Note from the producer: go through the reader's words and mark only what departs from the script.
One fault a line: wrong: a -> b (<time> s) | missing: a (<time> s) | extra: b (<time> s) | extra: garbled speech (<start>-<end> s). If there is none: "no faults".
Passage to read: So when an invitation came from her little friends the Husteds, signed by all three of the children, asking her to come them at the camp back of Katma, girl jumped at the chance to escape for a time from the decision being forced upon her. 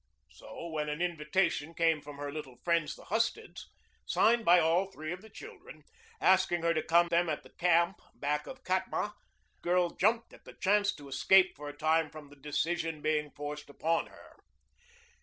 no faults